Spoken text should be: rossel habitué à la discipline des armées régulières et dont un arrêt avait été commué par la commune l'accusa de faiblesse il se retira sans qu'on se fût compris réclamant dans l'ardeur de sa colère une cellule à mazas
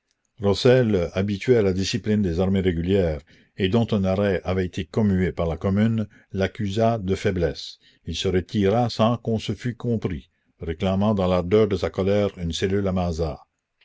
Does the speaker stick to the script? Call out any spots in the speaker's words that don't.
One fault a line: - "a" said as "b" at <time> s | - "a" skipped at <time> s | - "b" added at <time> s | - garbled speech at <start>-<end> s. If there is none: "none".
none